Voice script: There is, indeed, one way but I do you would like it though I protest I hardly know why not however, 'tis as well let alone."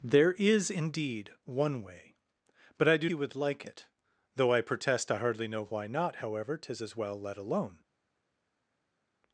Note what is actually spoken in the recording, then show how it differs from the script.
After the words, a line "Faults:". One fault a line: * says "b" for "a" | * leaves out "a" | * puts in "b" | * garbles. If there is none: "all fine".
There is, indeed, one way but I do you would like it though I protest I hardly know why not however, 'tis as well let alone."
Faults:
all fine